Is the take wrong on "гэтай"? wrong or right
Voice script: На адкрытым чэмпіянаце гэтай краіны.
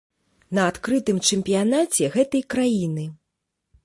right